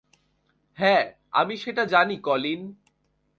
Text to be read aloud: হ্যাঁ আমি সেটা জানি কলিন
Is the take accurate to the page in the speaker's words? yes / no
yes